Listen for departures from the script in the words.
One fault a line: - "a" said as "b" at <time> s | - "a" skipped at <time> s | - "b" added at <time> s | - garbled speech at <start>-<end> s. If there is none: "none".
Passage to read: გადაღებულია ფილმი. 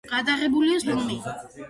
none